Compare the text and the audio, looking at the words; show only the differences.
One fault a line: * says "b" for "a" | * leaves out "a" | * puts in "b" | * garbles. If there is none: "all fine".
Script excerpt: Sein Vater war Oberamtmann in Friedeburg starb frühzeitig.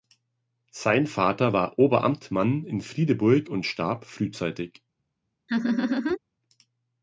* puts in "und"